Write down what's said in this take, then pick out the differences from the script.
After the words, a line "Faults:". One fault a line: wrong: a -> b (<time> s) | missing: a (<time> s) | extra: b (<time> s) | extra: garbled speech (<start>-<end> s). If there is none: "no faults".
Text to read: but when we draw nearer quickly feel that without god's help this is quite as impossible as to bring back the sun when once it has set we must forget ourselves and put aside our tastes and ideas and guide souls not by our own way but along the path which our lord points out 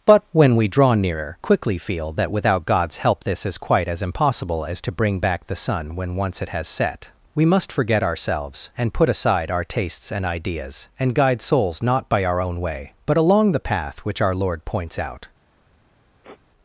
but when we draw nearer quickly feel that without god's help this is quite as impossible as to bring back the sun when once it has set we must forget ourselves and put aside our tastes and ideas and guide souls not by our own way but along the path which our lord points out
Faults:
no faults